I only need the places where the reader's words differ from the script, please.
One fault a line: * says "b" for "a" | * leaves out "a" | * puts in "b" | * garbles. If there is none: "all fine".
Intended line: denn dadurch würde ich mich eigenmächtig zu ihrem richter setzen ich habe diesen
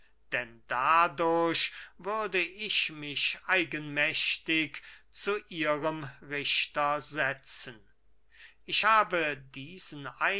all fine